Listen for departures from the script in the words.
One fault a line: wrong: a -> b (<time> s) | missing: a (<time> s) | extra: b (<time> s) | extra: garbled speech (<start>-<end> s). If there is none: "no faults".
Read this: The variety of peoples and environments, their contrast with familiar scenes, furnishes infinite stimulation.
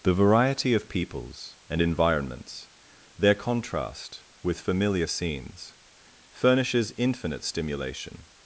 no faults